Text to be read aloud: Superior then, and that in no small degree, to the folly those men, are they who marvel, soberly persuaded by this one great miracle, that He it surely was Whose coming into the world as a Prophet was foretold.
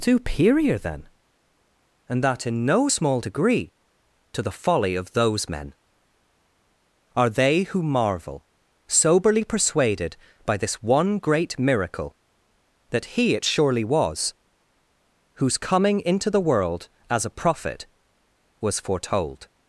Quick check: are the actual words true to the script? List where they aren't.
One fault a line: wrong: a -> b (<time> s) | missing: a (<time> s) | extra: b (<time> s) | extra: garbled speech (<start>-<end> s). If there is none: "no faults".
extra: of (4.9 s)